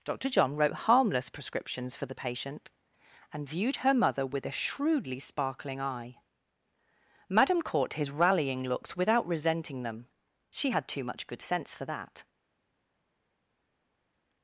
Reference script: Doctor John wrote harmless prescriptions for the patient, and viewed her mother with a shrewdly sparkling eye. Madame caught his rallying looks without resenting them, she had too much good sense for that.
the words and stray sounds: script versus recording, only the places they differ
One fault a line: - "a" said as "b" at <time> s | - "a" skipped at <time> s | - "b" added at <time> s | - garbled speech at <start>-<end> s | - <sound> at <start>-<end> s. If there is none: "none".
none